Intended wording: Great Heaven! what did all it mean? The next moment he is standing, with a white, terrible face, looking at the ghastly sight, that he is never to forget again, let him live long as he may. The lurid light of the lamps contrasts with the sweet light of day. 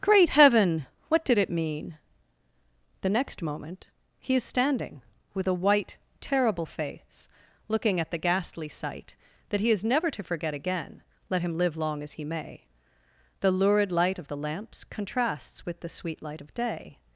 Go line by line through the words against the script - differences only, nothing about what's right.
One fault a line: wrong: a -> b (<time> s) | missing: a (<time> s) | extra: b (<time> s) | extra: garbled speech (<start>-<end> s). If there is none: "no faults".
missing: all (1.4 s)